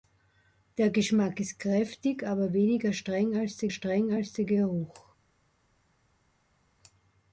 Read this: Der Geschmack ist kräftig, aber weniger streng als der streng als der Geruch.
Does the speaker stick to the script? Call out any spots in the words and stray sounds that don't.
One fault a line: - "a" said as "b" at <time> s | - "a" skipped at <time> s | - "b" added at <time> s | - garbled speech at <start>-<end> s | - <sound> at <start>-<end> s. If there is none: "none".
none